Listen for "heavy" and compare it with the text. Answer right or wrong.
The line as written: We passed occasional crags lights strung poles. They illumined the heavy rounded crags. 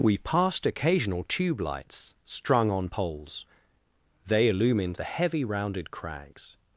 right